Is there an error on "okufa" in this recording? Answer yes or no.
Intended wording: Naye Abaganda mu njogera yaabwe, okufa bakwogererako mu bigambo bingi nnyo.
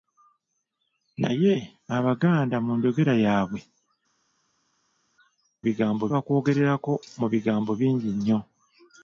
yes